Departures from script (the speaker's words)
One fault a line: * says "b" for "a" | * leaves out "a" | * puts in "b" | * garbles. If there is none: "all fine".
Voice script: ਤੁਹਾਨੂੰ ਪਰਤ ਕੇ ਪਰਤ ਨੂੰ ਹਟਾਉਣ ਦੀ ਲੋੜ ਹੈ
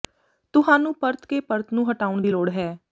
all fine